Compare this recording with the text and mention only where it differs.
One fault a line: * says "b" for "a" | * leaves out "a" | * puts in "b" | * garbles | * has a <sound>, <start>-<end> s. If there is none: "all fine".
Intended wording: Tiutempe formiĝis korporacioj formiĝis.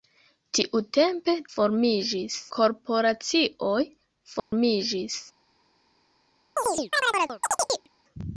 * has a dropout, 4.4-4.5 s
* has a chirp, 6.6-7.9 s